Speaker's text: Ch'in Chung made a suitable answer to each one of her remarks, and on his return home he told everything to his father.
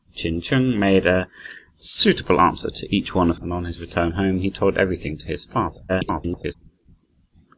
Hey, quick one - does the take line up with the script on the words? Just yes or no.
no